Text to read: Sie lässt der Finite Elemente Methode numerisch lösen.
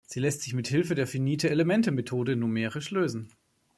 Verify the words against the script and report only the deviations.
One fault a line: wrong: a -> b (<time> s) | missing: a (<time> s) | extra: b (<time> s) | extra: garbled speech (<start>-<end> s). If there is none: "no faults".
extra: sich mit Hilfe (0.4 s)